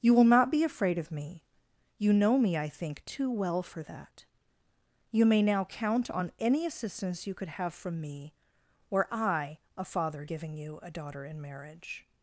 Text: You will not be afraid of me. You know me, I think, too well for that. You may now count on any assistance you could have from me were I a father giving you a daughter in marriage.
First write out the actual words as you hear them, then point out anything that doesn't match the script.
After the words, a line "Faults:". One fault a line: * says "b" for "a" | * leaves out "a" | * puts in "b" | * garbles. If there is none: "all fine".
You will not be afraid of me. You know me, I think, too well for that. You may now count on any assistance you could have from me were I a father giving you a daughter in marriage.
Faults:
all fine